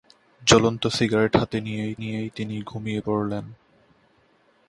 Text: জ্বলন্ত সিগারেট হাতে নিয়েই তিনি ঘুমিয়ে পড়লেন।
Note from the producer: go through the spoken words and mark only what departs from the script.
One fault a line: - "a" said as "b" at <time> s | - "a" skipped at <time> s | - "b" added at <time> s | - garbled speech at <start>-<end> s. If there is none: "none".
- "নিয়েই" added at 2.0 s